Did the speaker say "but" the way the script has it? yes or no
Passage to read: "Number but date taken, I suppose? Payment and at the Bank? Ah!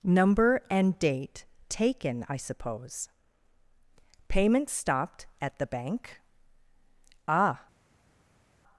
no